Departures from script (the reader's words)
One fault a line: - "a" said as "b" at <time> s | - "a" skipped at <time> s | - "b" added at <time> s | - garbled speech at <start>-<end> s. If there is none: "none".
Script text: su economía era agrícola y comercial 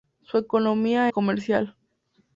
- "era agrícola" skipped at 1.1 s